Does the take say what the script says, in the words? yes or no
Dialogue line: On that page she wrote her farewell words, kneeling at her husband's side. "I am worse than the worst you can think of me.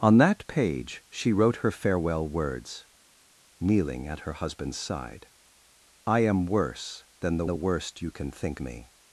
no